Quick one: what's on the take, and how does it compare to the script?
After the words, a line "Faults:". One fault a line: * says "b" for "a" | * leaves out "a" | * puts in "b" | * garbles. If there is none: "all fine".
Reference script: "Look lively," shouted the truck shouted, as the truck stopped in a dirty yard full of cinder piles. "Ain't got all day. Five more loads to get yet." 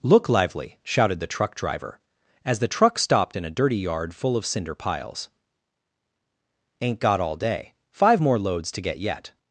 "Look lively," shouted the truck driver, as the truck stopped in a dirty yard full of cinder piles. "Ain't got all day. Five more loads to get yet."
Faults:
* says "driver" for "shouted"